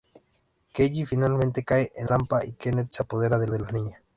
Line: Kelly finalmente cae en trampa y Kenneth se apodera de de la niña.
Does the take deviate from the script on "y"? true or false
false